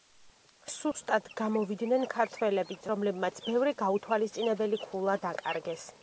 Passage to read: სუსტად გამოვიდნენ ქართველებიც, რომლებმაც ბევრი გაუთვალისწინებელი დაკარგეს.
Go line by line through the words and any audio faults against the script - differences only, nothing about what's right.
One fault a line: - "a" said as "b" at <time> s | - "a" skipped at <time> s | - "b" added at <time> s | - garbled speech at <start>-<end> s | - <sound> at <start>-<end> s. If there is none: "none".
- dropout at 0.9-0.9 s
- "ქულა" added at 4.8 s